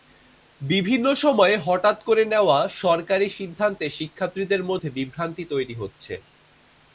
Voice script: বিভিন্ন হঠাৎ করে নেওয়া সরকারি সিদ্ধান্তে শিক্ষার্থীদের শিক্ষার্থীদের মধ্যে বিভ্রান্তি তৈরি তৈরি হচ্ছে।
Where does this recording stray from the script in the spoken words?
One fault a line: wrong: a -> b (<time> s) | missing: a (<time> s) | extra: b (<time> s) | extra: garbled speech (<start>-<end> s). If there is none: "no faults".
extra: সময়ে (1.2 s)
missing: শিক্ষার্থীদের (4.6 s)
missing: তৈরি (5.8 s)